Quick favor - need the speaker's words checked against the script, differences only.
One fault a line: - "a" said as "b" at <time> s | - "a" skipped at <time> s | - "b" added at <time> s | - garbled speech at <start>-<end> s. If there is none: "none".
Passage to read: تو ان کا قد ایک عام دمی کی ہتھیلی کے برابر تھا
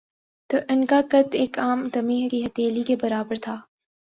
none